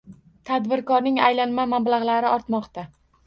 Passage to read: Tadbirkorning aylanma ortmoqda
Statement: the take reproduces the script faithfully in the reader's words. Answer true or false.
false